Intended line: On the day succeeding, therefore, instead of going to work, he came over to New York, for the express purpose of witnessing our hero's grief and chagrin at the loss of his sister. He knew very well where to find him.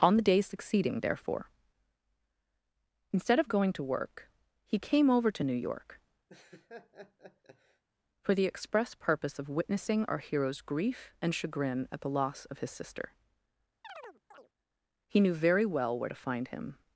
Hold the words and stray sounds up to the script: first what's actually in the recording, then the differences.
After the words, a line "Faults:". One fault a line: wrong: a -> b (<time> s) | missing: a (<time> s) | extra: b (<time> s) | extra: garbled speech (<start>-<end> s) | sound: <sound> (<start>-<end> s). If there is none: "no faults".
On the day succeeding, therefore, instead of going to work, he came over to New York, for the express purpose of witnessing our hero's grief and chagrin at the loss of his sister. He knew very well where to find him.
Faults:
sound: laugh (6.3-7.8 s)
sound: chirp (13.8-14.5 s)